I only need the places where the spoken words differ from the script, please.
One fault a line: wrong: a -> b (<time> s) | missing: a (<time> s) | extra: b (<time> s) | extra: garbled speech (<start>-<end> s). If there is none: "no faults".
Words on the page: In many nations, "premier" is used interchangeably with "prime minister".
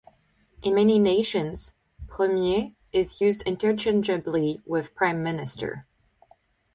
no faults